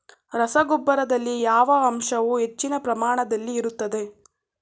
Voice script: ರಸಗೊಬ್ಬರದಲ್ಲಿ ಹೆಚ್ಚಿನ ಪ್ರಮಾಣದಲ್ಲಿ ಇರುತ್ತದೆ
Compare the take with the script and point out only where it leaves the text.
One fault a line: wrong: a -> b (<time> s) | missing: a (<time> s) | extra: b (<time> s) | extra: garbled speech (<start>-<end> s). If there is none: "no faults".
extra: ಯಾವ ಅಂಶವು (1.4 s)